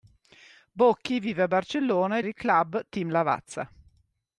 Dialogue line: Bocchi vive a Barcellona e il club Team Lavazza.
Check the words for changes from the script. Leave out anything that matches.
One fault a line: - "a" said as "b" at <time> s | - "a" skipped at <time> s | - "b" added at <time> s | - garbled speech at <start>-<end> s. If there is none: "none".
none